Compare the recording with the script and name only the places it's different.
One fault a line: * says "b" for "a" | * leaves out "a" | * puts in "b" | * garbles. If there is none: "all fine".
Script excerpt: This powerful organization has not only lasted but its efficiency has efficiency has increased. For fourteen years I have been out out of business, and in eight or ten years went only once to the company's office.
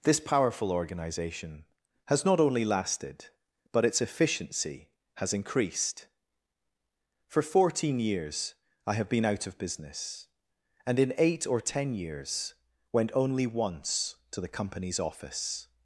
* leaves out "efficiency has"
* leaves out "out"